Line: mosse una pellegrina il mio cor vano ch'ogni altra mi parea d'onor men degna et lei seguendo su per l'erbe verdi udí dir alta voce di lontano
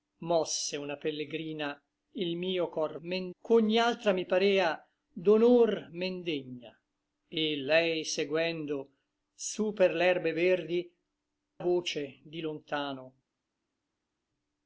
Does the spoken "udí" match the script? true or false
false